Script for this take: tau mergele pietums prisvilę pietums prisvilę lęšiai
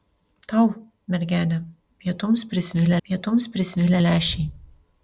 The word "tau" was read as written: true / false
true